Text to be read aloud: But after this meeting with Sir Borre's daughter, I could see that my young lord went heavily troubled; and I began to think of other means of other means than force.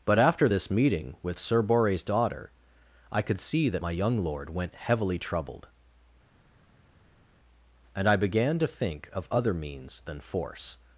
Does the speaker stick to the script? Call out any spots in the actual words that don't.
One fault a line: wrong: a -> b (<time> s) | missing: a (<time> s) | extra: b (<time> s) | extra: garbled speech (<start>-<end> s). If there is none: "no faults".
missing: of other means (10.0 s)